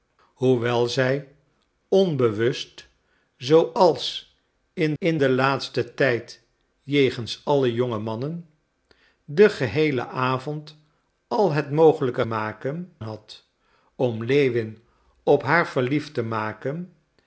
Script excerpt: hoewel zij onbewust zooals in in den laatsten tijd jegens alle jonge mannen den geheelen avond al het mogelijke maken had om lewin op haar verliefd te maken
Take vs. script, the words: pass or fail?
pass